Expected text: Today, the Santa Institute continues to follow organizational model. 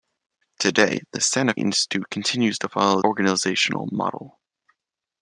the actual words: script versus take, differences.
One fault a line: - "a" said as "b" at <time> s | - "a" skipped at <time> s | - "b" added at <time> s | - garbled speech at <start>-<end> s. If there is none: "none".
none